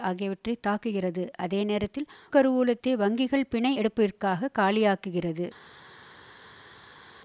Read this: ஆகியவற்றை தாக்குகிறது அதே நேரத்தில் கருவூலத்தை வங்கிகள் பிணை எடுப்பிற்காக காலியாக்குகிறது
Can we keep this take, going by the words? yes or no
yes